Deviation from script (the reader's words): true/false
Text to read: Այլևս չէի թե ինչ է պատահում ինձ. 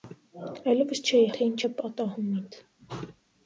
false